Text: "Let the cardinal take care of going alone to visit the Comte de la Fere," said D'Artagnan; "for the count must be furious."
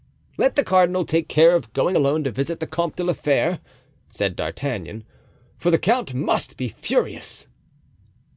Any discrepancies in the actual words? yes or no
no